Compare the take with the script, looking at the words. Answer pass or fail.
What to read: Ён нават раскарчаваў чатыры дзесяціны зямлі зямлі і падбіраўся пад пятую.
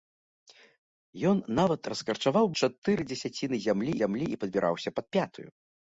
pass